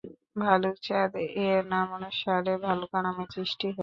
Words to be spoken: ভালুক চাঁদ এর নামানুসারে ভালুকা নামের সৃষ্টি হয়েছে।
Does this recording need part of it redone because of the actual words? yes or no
no